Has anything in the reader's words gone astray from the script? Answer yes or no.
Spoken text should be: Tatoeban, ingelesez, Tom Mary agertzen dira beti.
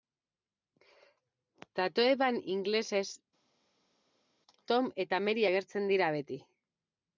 yes